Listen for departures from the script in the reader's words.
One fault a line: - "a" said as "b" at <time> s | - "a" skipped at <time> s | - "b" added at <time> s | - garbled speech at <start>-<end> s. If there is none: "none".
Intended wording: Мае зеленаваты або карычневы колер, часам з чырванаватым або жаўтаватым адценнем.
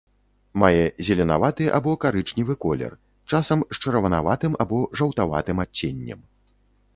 none